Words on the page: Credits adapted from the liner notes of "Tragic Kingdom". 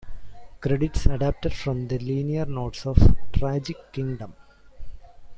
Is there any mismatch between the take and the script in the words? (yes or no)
no